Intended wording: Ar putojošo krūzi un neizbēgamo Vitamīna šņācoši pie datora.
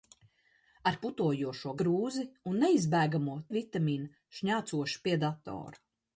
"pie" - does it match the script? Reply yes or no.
yes